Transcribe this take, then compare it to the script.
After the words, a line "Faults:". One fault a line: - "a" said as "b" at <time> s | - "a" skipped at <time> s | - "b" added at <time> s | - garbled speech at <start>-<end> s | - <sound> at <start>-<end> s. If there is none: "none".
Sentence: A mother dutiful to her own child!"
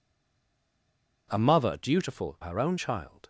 A mother dutiful her own child!"
Faults:
- "to" skipped at 2.4 s